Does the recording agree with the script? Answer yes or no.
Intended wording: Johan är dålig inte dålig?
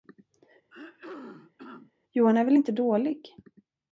no